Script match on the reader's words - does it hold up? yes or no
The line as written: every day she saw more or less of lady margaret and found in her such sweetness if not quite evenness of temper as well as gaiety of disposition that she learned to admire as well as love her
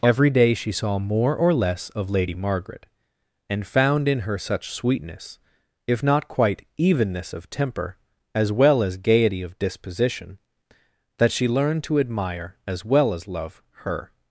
yes